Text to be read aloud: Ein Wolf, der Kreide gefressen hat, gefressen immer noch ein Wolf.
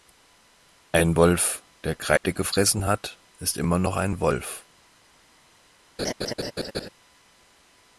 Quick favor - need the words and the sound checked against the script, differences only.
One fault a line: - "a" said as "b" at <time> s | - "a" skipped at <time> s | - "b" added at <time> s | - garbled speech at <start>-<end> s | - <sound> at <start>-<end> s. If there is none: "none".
- dropout at 2.2-2.2 s
- "gefressen" said as "ist" at 3.4 s
- laugh at 6.0-6.9 s